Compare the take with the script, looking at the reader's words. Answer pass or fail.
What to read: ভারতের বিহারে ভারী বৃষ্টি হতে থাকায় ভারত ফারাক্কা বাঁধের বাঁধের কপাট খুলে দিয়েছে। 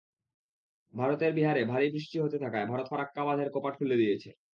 fail